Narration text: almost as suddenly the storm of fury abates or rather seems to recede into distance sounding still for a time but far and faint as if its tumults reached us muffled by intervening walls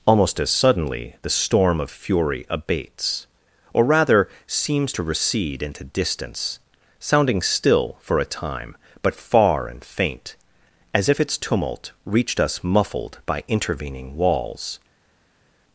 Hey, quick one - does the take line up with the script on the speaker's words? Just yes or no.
no